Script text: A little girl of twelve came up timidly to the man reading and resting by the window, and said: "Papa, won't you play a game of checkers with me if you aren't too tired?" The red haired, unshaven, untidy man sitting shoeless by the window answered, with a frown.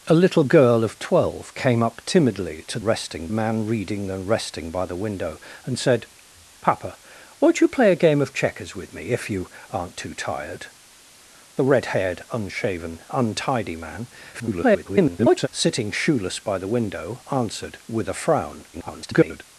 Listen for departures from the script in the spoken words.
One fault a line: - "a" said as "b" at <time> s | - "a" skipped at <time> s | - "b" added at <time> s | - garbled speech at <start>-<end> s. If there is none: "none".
- "the" said as "resting" at 2.8 s
- garbled speech at 14.3-15.5 s
- garbled speech at 18.7-19.4 s